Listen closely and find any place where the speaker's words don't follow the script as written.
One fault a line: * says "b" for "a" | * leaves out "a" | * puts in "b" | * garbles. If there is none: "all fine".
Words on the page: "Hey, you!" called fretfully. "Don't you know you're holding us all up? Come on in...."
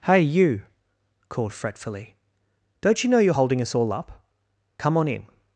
all fine